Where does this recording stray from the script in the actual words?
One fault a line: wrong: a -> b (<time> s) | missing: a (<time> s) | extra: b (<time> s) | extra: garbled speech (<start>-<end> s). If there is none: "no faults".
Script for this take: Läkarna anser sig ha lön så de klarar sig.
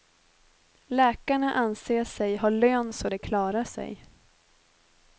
no faults